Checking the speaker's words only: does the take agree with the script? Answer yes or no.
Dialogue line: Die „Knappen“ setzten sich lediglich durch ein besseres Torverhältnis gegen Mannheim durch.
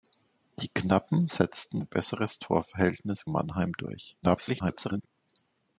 no